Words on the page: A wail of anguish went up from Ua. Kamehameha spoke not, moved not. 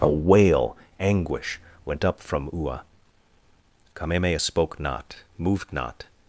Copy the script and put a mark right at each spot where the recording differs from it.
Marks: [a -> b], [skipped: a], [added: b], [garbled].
A wail [skipped: of] anguish went up from Ua. Kamehameha spoke not, moved not.